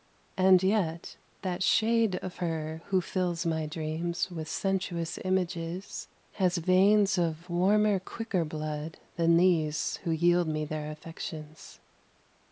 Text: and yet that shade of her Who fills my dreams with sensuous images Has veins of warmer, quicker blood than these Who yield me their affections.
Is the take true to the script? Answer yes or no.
yes